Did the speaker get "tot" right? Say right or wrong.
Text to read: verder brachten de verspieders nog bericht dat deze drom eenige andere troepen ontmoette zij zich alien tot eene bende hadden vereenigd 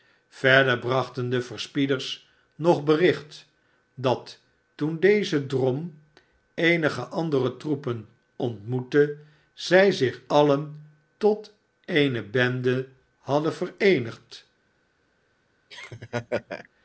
right